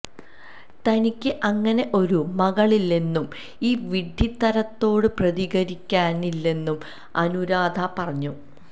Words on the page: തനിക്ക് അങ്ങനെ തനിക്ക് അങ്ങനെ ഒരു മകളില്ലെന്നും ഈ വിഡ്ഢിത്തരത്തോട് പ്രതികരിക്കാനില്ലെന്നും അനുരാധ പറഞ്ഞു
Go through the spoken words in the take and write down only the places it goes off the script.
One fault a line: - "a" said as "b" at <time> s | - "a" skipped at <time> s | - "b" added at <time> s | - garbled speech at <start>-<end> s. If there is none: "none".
- "തനിക്ക് അങ്ങനെ" skipped at 1.9 s